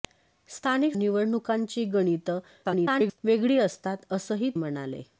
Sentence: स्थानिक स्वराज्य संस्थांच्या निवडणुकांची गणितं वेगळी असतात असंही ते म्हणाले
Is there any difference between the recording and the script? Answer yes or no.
yes